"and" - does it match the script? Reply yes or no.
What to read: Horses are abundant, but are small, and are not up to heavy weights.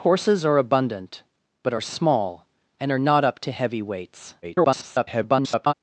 yes